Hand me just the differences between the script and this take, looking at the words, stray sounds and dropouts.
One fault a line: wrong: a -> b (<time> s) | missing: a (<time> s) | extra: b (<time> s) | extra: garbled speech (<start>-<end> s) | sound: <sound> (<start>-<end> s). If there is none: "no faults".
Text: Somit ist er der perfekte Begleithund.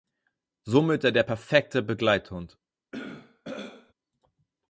missing: ist (1.1 s)
sound: throat clearing (2.9-3.9 s)